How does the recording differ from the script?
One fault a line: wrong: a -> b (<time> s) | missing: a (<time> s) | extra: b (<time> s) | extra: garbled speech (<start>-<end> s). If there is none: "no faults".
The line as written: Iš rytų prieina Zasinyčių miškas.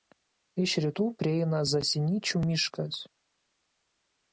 no faults